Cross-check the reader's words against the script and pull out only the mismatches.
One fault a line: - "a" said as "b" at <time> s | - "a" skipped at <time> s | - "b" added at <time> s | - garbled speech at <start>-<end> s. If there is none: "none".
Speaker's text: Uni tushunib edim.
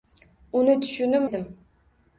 none